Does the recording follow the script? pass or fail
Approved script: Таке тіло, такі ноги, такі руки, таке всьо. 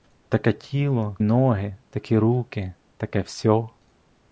fail